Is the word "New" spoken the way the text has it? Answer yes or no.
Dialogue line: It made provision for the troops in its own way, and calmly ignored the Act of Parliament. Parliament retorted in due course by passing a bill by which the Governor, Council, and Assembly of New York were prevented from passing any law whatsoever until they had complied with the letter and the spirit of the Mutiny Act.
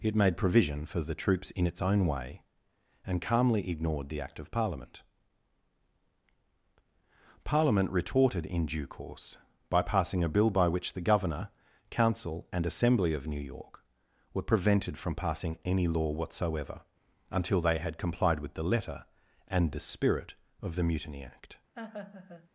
yes